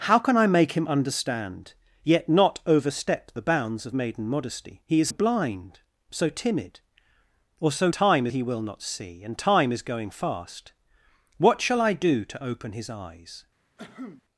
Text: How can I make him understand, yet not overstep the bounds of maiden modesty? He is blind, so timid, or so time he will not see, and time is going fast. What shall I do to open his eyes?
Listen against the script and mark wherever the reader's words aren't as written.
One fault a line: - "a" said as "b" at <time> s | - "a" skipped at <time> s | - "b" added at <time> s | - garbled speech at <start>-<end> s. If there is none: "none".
none